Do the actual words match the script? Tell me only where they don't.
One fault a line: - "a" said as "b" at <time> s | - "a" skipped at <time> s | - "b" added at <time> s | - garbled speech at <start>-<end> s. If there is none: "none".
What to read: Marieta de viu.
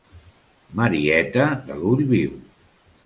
- "l'ull" added at 1.8 s